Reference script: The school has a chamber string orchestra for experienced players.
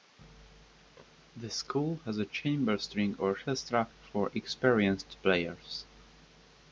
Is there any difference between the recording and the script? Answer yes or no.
no